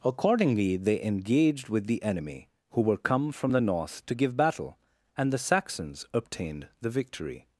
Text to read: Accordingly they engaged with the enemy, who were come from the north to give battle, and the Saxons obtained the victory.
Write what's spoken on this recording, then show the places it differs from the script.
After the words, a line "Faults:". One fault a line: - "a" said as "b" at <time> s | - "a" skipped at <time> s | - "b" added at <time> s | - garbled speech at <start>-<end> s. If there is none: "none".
Accordingly they engaged with the enemy, who were come from the north to give battle, and the Saxons obtained the victory.
Faults:
none